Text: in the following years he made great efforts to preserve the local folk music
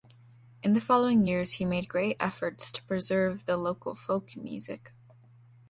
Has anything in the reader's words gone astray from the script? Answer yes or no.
no